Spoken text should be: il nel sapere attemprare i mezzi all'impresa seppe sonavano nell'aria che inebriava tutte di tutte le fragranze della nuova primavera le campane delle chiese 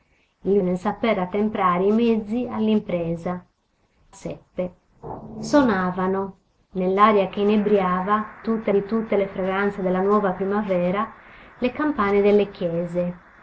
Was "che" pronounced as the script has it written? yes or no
yes